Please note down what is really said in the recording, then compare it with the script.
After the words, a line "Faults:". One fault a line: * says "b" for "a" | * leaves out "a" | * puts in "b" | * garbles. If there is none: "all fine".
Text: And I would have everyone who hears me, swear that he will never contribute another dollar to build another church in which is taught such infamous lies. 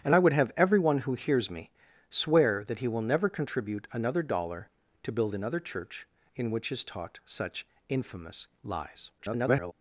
And I would have everyone who hears me, swear that he will never contribute another dollar to build another church in which is taught such infamous lies. [garbled]
Faults:
* garbles